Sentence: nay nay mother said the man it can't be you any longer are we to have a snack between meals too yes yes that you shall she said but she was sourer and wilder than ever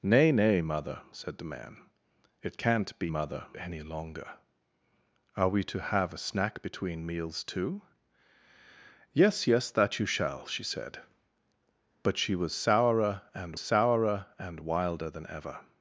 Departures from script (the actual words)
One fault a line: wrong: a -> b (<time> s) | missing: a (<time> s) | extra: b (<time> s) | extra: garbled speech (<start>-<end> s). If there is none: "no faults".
wrong: you -> mother (3.1 s)
extra: sourer and (13.6 s)